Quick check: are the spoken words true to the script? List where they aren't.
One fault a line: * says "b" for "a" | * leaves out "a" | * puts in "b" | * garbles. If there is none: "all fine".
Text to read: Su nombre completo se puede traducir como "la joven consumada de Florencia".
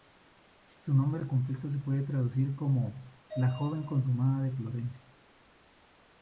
all fine